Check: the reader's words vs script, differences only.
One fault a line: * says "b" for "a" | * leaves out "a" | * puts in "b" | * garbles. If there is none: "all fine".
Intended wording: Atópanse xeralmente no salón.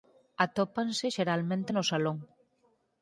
all fine